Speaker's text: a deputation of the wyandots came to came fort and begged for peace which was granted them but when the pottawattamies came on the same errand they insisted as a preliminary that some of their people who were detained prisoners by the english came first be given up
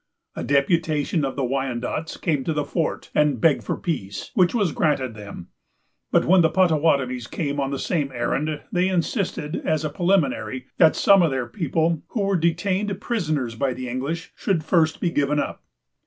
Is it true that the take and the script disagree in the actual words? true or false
true